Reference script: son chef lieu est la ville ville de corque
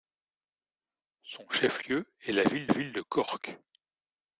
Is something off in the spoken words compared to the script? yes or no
no